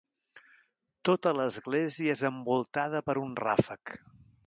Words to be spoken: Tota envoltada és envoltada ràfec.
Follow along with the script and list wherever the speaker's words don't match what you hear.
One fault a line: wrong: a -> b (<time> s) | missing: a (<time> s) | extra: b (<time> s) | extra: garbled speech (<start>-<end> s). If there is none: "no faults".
wrong: envoltada -> l'església (1.4 s)
extra: per un (3.1 s)